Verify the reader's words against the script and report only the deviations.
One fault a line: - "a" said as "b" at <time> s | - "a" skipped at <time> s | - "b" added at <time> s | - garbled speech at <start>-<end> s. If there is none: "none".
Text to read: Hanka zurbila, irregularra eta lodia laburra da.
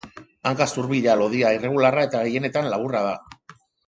- "lodia" added at 1.2 s
- "lodia" said as "gehienetan" at 2.3 s